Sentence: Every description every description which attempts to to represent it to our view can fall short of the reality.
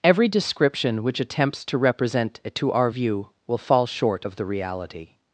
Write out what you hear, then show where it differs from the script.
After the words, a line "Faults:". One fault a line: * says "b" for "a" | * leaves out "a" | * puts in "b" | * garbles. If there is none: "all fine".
Every description which attempts to represent it to our view will fall short of the reality.
Faults:
* leaves out "every description"
* leaves out "to"
* says "will" for "can"